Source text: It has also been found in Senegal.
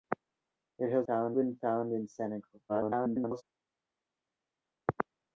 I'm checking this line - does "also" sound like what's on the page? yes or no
no